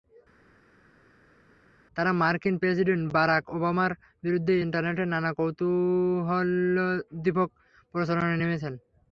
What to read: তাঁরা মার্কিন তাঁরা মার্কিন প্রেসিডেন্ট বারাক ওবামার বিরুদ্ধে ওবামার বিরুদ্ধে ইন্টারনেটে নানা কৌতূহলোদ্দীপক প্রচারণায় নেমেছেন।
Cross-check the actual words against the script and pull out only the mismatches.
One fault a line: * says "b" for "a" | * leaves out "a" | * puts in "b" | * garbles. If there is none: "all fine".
* leaves out "তাঁরা মার্কিন"
* leaves out "ওবামার বিরুদ্ধে"